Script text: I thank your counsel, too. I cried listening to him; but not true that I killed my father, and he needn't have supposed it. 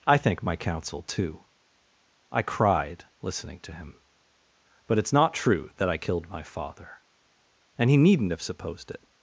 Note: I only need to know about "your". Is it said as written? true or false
false